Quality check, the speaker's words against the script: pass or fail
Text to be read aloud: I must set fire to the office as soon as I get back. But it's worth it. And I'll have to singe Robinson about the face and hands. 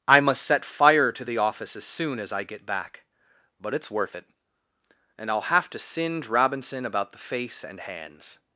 pass